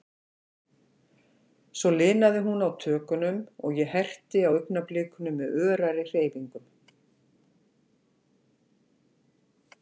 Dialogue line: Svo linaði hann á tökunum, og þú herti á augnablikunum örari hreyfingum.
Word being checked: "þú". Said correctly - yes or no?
no